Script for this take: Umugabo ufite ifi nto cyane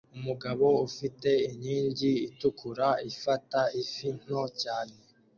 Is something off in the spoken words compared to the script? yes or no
yes